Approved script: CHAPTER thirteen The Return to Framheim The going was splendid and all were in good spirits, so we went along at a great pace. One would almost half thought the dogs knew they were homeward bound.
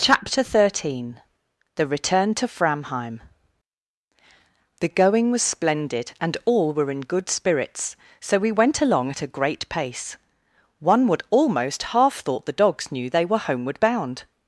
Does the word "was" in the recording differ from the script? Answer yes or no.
no